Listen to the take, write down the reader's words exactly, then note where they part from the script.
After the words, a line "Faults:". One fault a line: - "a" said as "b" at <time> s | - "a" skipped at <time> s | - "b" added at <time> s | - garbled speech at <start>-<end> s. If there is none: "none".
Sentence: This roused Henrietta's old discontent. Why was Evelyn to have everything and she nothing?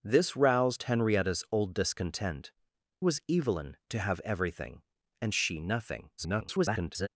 This roused Henrietta's old discontent. Was Evelyn to have everything and she nothing? [garbled]
Faults:
- "Why" skipped at 2.5 s
- garbled speech at 6.2-7.1 s